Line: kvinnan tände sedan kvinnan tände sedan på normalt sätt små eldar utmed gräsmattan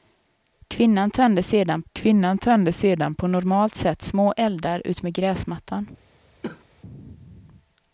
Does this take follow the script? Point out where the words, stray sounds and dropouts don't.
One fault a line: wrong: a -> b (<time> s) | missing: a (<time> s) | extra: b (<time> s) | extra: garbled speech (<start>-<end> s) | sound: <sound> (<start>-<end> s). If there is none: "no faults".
sound: cough (6.4-6.6 s)